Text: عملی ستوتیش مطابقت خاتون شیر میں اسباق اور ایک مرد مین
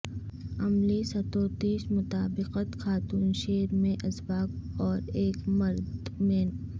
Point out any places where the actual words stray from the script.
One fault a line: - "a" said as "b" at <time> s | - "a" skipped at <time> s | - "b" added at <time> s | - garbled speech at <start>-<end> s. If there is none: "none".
none